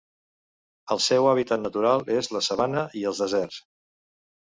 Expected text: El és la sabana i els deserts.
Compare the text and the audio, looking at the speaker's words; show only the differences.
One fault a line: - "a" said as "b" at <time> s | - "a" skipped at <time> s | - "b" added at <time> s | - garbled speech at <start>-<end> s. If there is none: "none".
- "seu hàbitat natural" added at 1.1 s